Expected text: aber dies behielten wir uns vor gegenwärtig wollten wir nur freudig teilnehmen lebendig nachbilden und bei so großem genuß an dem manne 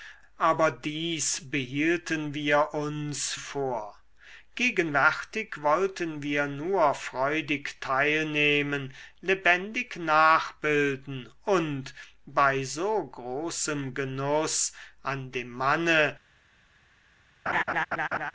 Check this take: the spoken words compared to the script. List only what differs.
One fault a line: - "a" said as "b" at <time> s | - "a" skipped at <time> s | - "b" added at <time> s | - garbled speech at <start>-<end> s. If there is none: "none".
none